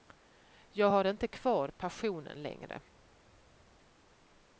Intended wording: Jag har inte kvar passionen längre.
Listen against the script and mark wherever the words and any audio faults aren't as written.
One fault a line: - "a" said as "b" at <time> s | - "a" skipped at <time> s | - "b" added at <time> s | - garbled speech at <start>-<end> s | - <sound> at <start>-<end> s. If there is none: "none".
none